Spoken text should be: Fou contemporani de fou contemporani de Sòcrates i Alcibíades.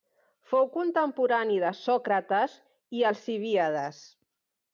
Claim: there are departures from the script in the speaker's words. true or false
true